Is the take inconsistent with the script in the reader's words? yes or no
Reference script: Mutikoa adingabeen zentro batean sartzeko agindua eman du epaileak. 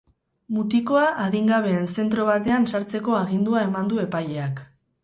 no